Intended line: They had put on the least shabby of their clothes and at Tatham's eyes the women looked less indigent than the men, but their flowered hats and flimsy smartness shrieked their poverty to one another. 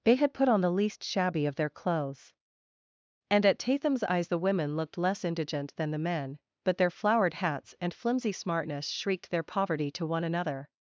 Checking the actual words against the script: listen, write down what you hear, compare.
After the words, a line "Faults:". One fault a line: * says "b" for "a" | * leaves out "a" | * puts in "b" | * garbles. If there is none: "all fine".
They had put on the least shabby of their clothes and at Tatham's eyes the women looked less indigent than the men, but their flowered hats and flimsy smartness shrieked their poverty to one another.
Faults:
all fine